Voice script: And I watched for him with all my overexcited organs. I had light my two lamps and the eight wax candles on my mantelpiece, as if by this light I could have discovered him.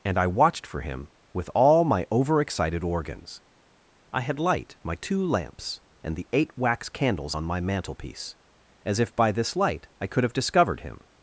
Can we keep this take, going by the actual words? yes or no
yes